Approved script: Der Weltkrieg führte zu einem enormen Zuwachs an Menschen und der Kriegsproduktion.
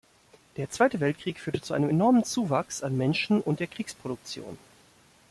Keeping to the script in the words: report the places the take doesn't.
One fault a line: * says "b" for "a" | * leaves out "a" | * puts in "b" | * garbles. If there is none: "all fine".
* puts in "Zweite"